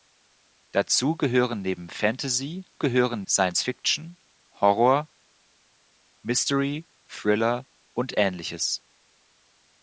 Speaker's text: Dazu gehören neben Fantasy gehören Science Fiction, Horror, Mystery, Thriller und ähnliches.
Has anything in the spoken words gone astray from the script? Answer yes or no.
no